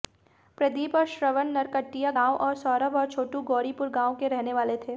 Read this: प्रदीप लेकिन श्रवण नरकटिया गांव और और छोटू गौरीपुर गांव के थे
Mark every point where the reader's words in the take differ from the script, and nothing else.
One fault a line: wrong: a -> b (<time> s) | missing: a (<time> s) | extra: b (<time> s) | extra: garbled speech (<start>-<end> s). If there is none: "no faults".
wrong: लेकिन -> और (0.9 s)
extra: सौरभ (2.6 s)
extra: रहने वाले (4.3 s)